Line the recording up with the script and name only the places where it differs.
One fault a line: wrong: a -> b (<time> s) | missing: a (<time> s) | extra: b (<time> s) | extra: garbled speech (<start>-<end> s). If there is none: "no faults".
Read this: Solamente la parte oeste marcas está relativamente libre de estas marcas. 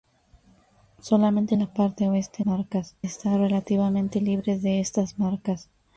no faults